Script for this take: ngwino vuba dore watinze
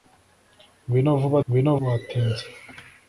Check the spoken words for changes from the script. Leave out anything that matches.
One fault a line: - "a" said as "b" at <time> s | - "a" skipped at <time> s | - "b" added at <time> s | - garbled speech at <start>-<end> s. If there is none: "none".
- "dore" said as "ngwino" at 1.4 s